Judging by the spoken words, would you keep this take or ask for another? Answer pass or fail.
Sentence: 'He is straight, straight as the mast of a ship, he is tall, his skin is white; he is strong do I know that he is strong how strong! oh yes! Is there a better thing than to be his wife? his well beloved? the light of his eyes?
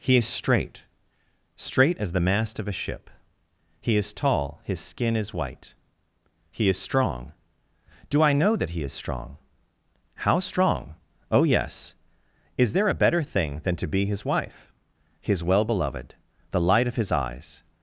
pass